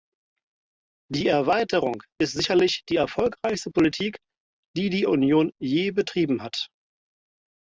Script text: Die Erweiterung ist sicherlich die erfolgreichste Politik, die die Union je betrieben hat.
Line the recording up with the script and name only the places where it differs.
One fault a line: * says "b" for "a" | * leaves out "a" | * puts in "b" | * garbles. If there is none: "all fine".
all fine